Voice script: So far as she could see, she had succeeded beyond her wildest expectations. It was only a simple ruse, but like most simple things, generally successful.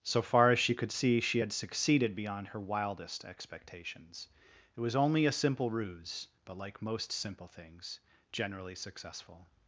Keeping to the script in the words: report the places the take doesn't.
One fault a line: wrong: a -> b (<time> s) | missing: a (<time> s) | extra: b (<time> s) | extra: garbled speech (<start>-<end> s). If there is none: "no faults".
no faults